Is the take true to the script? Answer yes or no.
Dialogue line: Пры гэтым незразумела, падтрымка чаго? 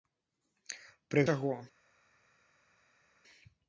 no